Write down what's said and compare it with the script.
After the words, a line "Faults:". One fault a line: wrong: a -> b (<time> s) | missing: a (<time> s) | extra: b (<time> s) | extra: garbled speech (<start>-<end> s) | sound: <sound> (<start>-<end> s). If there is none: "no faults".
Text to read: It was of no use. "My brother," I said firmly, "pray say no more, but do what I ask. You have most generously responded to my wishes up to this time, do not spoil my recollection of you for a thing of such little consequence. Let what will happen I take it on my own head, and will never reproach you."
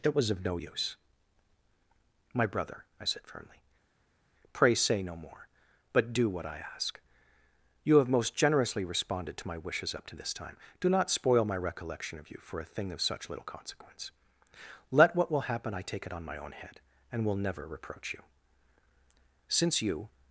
It was of no use. "My brother," I said firmly, "pray say no more, but do what I ask. You have most generously responded to my wishes up to this time, do not spoil my recollection of you for a thing of such little consequence. Let what will happen I take it on my own head, and will never reproach you." "Since you
Faults:
extra: Since you (19.5 s)